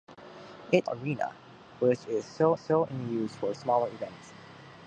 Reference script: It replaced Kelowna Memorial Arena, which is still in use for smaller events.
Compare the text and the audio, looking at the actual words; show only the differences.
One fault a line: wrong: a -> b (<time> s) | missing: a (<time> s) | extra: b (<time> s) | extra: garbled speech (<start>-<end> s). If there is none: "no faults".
missing: replaced Kelowna Memorial (0.9 s)
extra: still (2.5 s)